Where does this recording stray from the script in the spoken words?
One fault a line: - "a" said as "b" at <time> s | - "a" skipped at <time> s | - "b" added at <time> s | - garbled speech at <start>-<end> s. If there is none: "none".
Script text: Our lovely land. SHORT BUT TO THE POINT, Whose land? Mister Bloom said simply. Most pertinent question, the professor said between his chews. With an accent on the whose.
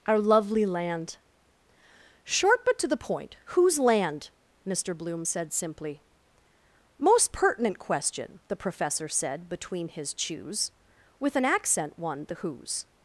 - "on" said as "one" at 12.0 s